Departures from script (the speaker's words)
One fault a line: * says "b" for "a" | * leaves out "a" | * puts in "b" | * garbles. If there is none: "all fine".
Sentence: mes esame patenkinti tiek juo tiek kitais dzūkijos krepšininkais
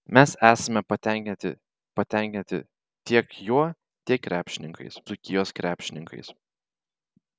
* puts in "patenkinti"
* says "krepšininkais" for "kitais"